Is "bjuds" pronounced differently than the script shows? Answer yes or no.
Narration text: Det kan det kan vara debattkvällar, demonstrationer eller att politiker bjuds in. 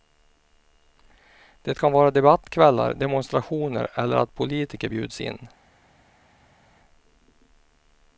no